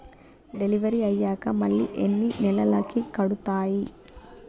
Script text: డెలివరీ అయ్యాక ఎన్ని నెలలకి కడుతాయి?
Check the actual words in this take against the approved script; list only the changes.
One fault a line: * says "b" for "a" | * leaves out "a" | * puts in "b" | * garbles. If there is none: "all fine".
* puts in "మళ్ళీ"